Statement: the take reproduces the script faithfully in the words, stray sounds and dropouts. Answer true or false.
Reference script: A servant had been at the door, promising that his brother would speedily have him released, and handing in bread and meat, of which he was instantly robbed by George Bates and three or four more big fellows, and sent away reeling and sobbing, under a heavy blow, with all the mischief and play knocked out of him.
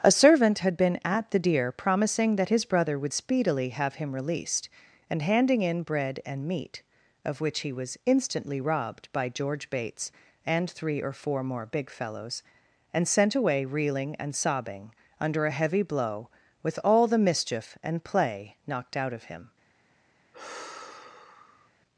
false